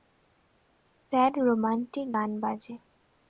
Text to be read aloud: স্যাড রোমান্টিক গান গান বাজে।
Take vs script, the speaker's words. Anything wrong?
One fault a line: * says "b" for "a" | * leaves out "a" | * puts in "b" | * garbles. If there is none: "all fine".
* leaves out "গান"